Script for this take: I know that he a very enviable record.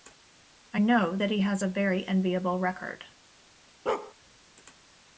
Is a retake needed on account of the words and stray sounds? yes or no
yes